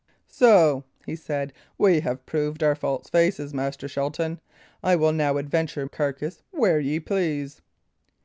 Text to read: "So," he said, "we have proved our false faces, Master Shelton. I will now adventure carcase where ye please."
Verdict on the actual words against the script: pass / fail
pass